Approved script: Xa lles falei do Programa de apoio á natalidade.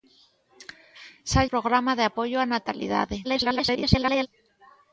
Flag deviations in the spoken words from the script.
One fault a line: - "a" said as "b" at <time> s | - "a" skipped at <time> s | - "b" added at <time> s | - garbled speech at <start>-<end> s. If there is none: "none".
- "lles falei do" skipped at 1.4 s
- garbled speech at 3.2-4.3 s